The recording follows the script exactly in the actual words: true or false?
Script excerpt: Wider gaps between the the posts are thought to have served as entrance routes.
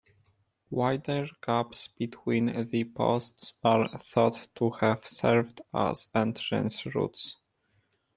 false